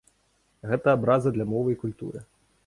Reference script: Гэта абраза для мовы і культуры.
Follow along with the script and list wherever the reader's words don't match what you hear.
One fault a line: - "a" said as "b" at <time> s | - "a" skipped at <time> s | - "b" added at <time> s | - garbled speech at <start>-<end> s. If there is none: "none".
none